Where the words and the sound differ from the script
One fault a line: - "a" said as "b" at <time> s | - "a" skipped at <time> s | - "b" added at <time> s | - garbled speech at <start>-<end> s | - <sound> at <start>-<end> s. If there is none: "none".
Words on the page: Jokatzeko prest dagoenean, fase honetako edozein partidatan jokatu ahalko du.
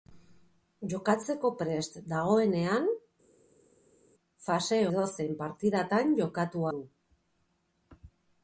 - "honetako" skipped at 4.8 s
- "ahalko" skipped at 6.7 s